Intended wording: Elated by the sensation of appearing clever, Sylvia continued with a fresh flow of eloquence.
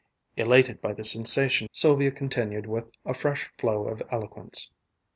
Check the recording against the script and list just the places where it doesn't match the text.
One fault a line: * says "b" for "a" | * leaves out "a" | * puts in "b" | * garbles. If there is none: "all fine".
* leaves out "of appearing clever"